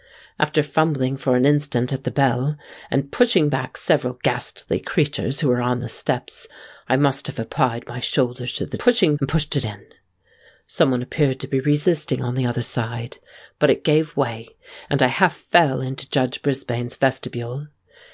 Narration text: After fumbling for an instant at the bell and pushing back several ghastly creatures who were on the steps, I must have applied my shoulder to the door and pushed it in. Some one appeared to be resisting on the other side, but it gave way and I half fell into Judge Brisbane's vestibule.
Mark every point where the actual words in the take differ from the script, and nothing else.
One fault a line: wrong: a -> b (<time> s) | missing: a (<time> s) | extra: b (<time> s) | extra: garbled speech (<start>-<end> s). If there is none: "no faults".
wrong: door -> pushing (8.8 s)